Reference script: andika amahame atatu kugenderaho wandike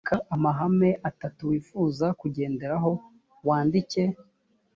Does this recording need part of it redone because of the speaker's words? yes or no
yes